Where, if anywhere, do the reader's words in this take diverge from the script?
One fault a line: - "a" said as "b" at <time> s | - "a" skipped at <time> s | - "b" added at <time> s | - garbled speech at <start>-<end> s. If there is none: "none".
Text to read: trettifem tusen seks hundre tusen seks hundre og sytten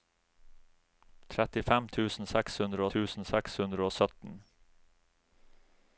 none